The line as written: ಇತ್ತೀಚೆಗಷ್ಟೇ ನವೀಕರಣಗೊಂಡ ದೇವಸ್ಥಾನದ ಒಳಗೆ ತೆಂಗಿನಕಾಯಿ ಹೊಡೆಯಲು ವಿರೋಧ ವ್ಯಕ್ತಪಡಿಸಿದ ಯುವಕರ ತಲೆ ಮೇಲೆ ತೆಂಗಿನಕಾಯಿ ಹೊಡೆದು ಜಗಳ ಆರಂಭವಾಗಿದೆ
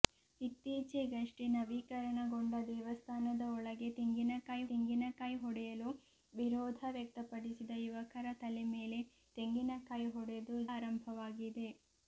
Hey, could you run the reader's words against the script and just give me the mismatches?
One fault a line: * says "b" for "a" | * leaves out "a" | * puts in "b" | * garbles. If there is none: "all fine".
* puts in "ತೆಂಗಿನಕಾಯಿ"
* leaves out "ಜಗಳ"